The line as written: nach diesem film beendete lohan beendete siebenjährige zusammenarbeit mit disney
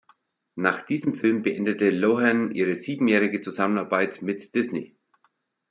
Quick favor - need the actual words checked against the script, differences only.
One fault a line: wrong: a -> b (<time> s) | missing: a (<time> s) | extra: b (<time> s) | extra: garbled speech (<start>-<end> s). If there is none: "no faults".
wrong: beendete -> ihre (2.5 s)